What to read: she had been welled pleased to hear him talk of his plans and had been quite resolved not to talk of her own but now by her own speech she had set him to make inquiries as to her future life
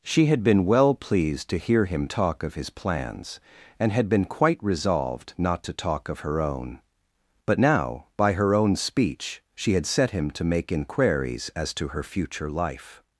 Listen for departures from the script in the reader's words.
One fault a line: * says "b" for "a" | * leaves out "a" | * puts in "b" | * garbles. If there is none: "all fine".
* says "well" for "welled"